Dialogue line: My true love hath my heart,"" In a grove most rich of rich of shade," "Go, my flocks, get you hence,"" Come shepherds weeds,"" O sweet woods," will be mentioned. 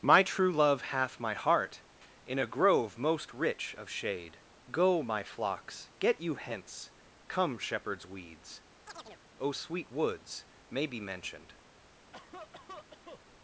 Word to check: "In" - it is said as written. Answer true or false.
true